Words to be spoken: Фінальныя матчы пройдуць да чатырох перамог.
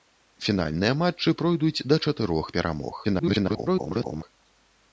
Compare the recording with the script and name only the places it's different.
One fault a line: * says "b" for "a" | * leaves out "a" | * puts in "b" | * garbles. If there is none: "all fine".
* garbles